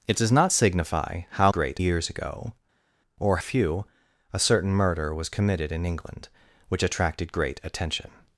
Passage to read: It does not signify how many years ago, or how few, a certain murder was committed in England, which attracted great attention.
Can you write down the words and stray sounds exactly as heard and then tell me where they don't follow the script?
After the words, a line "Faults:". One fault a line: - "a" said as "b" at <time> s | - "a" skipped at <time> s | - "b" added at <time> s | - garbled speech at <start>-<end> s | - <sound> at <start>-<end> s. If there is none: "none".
It does not signify how great years ago, or few, a certain murder was committed in England, which attracted great attention.
Faults:
- "many" said as "great" at 1.5 s
- "how" skipped at 3.4 s